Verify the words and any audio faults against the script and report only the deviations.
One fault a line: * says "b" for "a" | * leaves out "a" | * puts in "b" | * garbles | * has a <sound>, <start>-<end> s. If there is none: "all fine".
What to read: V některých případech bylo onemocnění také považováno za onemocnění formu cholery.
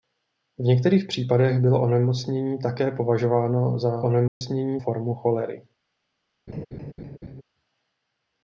* has a dropout, 4.3-4.4 s
* has a laugh, 6.5-7.4 s